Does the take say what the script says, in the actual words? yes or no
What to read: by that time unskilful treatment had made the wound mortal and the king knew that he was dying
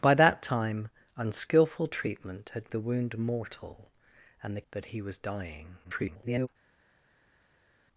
no